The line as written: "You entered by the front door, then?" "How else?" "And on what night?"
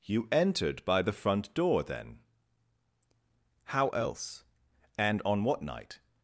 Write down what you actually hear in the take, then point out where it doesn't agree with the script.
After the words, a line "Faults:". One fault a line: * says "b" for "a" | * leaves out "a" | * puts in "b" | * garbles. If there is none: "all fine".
"You entered by the front door, then?" "How else?" "And on what night?"
Faults:
all fine